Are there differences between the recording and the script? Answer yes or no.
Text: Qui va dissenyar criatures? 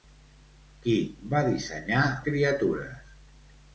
no